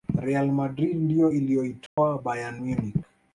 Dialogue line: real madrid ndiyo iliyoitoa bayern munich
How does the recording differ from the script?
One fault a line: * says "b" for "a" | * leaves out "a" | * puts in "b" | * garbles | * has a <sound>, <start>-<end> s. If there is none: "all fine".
* has a dropout, 1.9-2.0 s